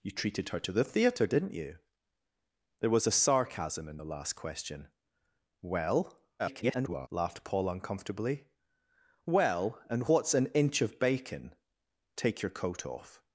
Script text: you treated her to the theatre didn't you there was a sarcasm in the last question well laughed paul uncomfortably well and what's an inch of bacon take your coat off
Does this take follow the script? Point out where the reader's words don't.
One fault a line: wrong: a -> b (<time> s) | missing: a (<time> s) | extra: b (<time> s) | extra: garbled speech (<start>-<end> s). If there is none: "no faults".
extra: garbled speech (6.4-7.1 s)